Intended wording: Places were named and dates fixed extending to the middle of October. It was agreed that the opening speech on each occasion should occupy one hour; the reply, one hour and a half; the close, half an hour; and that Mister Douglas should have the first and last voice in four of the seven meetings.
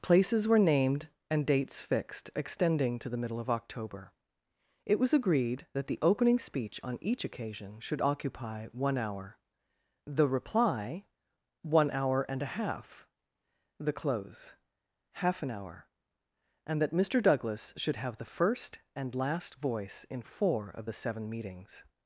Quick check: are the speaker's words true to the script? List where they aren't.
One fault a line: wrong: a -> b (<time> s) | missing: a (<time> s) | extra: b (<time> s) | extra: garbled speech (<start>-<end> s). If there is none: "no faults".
no faults